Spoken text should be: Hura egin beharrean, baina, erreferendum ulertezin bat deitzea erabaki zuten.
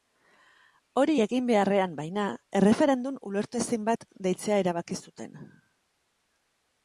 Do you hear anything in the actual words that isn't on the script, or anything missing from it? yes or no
yes